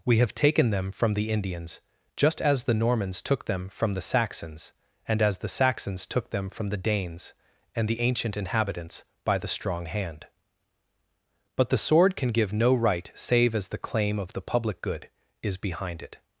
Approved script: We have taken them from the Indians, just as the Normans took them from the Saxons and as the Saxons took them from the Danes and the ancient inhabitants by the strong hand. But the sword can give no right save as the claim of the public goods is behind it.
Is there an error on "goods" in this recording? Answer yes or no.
yes